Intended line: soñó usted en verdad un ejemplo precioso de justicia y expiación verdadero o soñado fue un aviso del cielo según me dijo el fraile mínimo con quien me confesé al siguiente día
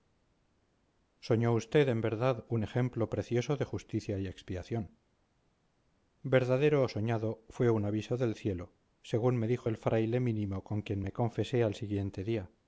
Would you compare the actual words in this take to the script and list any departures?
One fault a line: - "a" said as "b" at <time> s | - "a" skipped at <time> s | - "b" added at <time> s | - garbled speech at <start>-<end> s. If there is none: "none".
none